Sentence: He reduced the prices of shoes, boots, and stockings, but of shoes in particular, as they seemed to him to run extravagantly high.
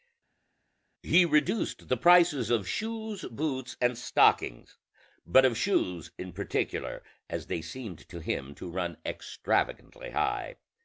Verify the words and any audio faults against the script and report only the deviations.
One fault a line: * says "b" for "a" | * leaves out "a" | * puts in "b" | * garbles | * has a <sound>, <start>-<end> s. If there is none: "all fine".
all fine